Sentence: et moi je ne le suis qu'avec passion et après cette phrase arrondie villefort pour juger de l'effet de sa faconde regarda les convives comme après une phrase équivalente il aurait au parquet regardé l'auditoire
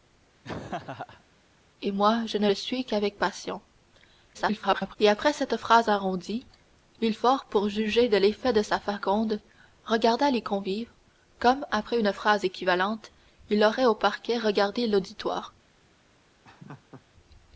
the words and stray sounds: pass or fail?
fail